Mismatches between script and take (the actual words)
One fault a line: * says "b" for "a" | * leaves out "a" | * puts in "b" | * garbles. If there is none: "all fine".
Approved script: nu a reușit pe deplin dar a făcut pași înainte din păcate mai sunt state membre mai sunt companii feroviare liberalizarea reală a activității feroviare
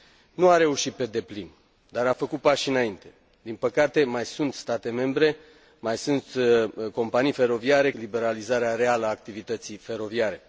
all fine